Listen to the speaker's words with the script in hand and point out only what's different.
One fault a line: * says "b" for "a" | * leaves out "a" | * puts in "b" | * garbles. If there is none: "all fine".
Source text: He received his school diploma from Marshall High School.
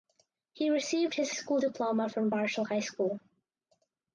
all fine